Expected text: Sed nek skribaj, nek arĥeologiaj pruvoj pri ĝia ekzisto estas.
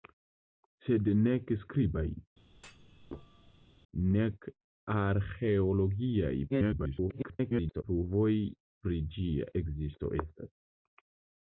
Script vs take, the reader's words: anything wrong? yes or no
yes